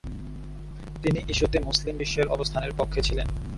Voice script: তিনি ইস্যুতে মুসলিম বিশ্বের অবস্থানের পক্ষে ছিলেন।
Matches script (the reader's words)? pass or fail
pass